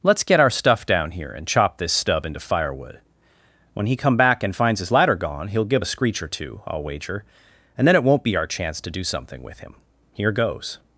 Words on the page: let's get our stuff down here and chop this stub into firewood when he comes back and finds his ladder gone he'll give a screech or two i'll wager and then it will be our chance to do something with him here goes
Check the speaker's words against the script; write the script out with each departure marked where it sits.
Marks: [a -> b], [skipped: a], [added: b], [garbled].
let's get our stuff down here and chop this stub into firewood when he [comes -> come] back and finds his ladder gone he'll give a screech or two i'll wager and then it [will -> won't] be our chance to do something with him here goes